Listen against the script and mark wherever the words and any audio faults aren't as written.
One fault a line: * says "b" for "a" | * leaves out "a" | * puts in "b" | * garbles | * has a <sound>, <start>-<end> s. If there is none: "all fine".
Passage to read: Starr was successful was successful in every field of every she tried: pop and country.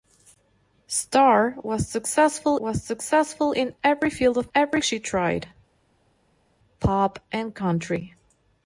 all fine